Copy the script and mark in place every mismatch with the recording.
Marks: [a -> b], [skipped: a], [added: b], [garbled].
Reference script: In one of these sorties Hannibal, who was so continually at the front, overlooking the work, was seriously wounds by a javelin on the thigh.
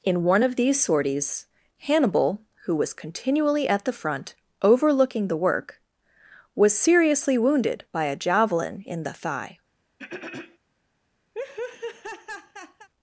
In one of these sorties Hannibal, who was [skipped: so] continually at the front, overlooking the work, was seriously [wounds -> wounded] by a javelin [on -> in] the thigh.